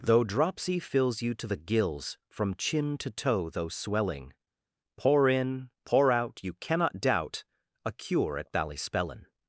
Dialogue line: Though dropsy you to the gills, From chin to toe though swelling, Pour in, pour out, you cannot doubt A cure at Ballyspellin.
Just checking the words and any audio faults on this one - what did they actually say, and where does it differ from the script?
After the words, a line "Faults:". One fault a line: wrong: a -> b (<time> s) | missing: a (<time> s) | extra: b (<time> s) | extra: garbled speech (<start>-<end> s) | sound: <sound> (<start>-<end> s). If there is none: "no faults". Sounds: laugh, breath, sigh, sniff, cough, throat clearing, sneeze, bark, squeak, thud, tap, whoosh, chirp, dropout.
Though dropsy fills you to the gills, From chin to toe though swelling, Pour in, pour out, you cannot doubt A cure at Ballyspellin.
Faults:
extra: fills (0.8 s)